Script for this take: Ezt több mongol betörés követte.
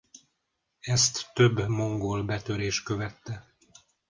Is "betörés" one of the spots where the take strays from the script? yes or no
no